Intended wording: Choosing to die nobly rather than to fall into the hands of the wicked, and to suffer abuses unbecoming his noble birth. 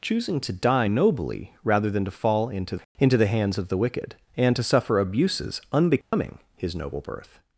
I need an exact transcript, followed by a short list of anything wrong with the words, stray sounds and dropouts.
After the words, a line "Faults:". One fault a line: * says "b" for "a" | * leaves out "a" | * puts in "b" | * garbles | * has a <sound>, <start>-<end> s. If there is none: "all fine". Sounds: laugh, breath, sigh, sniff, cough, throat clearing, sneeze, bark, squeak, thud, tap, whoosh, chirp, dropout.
Choosing to die nobly rather than to fall into into the hands of the wicked, and to suffer abuses unbecoming his noble birth.
Faults:
* puts in "into"
* has a dropout, 6.0-6.1 s